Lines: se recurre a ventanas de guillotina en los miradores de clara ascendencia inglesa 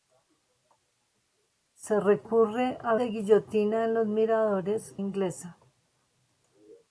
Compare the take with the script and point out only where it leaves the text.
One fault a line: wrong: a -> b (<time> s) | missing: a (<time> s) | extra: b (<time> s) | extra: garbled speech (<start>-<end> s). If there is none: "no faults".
missing: ventanas (3.0 s)
missing: de clara ascendencia (5.0 s)